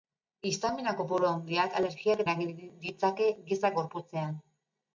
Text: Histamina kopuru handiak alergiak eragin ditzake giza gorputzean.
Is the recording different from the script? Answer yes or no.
no